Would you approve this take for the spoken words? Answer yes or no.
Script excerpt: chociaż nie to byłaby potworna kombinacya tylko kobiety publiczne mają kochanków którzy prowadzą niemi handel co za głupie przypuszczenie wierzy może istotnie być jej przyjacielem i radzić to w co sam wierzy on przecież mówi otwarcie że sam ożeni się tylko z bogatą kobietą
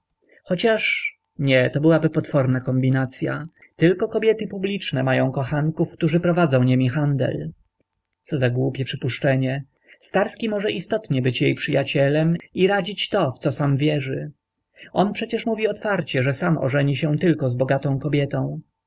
no